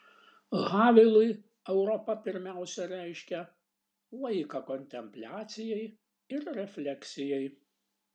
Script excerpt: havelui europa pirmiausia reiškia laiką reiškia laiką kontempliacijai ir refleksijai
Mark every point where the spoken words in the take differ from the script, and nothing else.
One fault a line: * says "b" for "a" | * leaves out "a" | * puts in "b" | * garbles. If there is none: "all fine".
* leaves out "reiškia laiką"